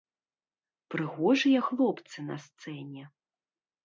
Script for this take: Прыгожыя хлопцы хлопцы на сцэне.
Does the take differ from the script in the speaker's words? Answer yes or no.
yes